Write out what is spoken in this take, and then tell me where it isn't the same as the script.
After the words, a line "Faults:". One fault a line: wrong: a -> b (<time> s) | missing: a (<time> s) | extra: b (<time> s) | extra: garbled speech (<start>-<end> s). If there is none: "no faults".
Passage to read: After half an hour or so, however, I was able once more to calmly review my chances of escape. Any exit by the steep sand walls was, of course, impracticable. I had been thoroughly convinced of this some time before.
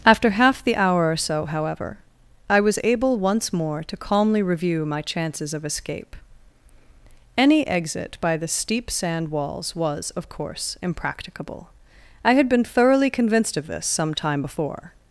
After half the hour or so, however, I was able once more to calmly review my chances of escape. Any exit by the steep sand walls was, of course, impracticable. I had been thoroughly convinced of this some time before.
Faults:
wrong: an -> the (0.6 s)